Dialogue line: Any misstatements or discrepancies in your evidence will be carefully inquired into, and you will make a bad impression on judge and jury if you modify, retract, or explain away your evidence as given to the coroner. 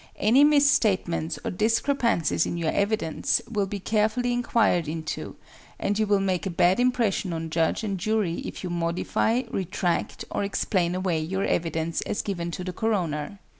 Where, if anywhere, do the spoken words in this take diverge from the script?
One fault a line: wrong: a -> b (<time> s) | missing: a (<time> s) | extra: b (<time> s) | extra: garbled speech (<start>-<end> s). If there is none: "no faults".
no faults